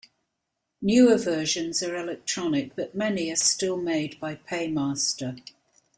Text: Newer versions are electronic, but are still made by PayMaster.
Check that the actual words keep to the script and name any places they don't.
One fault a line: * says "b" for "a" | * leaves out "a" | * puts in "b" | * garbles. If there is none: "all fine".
* puts in "many"